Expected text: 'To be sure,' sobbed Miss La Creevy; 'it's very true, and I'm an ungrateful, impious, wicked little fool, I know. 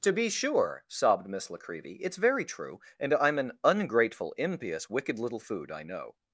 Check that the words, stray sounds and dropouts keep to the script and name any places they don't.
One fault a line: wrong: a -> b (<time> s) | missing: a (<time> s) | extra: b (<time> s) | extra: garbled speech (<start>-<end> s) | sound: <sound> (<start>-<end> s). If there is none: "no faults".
wrong: fool -> food (5.4 s)